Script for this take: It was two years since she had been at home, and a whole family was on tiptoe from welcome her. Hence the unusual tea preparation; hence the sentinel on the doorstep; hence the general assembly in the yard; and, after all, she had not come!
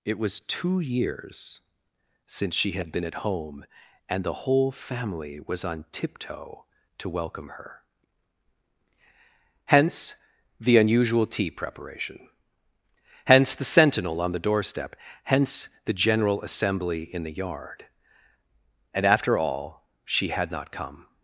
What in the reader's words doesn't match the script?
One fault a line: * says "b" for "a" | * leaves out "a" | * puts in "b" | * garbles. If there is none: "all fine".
* says "the" for "a"
* says "to" for "from"